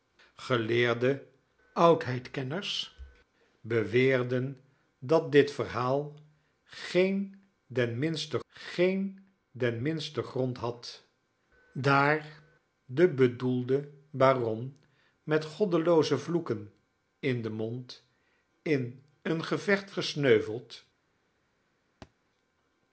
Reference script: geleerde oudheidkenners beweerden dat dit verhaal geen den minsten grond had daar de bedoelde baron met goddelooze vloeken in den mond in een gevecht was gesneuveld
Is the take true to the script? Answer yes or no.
no